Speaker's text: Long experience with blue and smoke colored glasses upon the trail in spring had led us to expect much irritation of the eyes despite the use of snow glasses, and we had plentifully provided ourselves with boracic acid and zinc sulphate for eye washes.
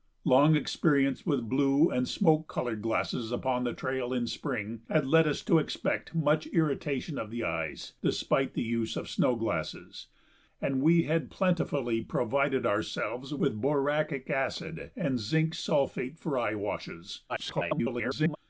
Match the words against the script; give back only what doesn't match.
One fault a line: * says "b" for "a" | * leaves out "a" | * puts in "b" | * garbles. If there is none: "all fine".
* garbles